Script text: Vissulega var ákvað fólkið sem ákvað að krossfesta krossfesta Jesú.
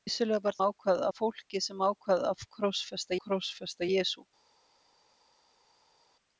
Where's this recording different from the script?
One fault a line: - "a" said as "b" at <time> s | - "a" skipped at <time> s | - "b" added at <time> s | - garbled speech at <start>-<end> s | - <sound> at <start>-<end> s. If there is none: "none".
none